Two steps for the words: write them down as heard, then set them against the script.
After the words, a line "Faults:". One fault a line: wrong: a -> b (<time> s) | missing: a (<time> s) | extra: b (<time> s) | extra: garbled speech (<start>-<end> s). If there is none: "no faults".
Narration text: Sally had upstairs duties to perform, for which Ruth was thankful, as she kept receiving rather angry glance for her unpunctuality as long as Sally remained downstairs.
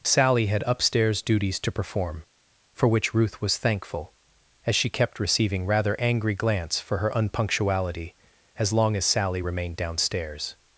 Sally had upstairs duties to perform, for which Ruth was thankful, as she kept receiving rather angry glance for her unpunctuality as long as Sally remained downstairs.
Faults:
no faults